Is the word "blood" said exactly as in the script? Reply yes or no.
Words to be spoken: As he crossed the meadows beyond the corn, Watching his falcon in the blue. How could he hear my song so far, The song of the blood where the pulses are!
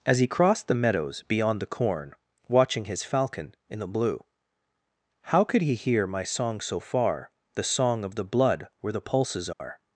yes